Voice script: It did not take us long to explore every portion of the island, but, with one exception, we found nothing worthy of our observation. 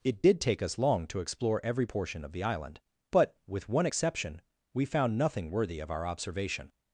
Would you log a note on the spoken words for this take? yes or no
yes